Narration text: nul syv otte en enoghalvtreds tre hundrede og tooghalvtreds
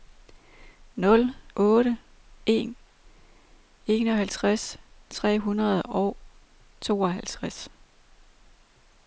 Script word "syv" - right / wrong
wrong